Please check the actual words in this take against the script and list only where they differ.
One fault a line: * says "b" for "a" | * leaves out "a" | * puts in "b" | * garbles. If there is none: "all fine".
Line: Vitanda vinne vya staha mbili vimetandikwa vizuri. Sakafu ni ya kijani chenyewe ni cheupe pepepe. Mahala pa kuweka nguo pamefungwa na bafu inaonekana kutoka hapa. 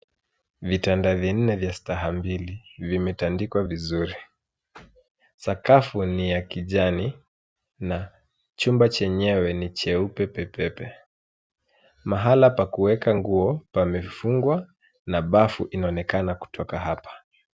* puts in "na chumba"